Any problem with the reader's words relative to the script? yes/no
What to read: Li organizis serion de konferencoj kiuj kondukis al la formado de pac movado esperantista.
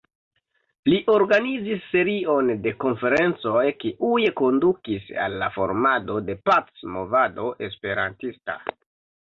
no